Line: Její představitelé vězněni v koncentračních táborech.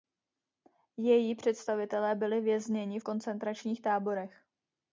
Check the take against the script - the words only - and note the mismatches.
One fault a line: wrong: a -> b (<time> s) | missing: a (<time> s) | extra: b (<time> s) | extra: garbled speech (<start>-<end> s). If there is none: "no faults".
extra: byli (2.1 s)